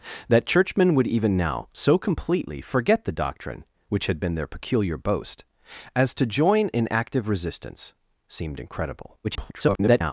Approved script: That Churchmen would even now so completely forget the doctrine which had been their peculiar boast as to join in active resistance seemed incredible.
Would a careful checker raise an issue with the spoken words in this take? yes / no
yes